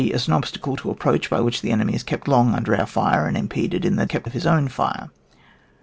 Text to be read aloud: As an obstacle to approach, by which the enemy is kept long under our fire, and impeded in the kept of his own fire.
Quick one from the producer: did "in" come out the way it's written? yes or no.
yes